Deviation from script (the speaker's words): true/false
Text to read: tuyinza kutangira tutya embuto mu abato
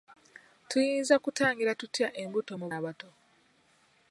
false